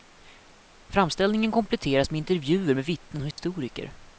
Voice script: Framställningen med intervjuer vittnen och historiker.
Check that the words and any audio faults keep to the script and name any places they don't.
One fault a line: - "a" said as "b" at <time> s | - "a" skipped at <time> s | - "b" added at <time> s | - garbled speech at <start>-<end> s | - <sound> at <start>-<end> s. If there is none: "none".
- "kompletteras" added at 1.5 s
- "med" added at 2.7 s
- dropout at 3.3-3.4 s